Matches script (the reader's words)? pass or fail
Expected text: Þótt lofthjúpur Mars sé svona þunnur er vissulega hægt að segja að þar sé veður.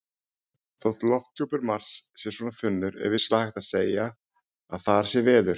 pass